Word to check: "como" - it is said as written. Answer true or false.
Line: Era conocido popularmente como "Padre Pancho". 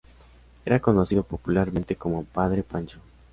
true